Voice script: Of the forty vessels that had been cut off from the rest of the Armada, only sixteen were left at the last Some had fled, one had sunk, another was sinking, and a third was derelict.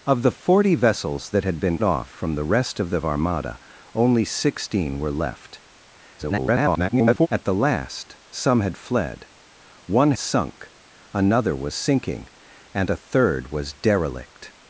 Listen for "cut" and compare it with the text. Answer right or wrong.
wrong